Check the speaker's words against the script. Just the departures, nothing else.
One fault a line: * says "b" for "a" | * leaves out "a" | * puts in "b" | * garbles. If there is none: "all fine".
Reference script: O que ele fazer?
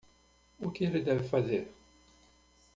* puts in "deve"